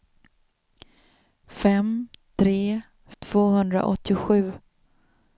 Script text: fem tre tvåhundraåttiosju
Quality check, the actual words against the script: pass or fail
pass